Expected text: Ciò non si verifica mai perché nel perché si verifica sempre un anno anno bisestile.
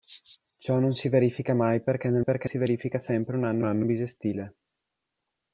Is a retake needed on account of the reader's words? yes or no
no